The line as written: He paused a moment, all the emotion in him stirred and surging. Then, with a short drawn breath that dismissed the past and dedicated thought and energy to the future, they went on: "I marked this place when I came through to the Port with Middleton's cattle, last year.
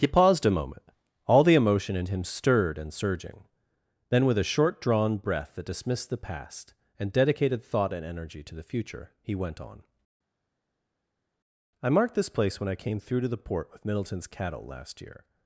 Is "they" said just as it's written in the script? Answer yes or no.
no